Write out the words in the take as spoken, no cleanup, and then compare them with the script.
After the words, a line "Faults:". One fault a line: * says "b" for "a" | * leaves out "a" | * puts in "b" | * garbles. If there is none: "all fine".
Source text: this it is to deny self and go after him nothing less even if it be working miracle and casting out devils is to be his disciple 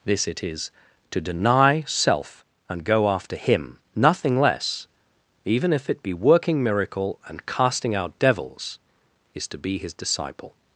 this it is to deny self and go after him nothing less even if it be working miracle and casting out devils is to be his disciple
Faults:
all fine